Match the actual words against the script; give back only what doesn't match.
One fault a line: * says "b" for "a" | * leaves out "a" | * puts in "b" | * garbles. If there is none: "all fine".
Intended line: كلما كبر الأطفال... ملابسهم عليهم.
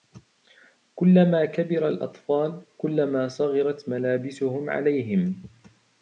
* puts in "كلما صغرت"